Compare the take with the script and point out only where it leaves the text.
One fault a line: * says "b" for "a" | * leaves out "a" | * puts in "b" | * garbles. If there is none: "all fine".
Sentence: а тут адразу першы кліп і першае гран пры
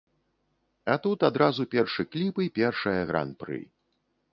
all fine